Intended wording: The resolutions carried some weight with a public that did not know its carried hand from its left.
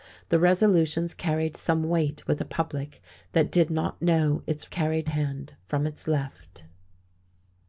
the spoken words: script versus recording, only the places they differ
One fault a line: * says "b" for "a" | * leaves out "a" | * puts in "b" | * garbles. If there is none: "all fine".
all fine